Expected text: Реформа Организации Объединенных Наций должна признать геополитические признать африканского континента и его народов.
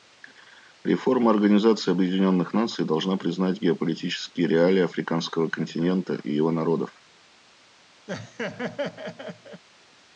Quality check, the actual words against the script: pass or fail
fail